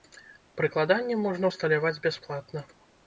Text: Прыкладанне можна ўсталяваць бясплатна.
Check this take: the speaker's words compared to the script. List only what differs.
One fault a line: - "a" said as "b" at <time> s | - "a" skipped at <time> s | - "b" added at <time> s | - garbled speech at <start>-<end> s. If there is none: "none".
none